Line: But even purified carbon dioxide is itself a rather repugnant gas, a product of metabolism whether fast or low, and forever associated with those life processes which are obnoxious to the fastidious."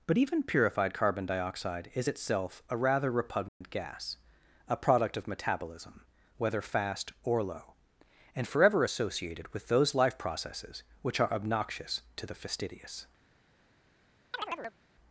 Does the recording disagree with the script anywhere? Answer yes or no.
no